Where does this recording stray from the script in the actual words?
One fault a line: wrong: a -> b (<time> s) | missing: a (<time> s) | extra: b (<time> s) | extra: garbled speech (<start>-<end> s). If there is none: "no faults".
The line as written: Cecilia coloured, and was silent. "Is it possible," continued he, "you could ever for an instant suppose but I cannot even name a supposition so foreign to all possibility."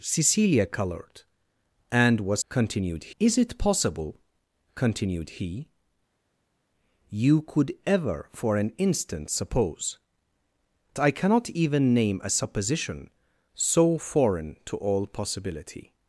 wrong: silent -> continued (2.5 s)
missing: but (10.0 s)